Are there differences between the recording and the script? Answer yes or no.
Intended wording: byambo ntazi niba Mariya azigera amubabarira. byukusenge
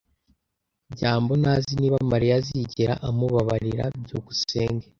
no